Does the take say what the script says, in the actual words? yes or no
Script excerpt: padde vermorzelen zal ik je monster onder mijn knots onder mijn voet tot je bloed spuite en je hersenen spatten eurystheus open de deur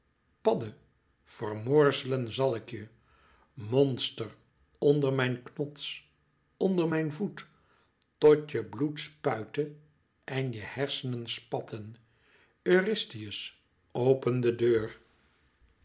yes